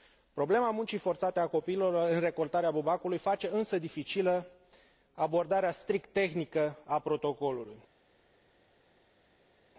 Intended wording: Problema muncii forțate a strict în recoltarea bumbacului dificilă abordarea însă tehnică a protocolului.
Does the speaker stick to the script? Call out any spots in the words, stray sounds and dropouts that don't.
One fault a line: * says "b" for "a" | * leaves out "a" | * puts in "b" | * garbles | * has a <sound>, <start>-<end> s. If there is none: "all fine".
* says "copiilor" for "strict"
* puts in "face însă"
* says "strict" for "însă"